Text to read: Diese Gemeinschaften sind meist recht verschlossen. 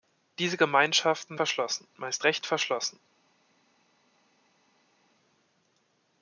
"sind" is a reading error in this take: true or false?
true